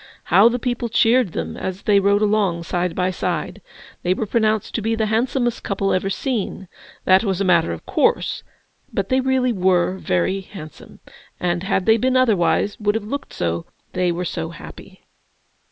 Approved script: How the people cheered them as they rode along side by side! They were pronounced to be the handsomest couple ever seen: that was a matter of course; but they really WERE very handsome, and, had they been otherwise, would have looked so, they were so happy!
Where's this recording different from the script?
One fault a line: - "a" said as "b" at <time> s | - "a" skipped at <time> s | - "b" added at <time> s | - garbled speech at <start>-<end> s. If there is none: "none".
none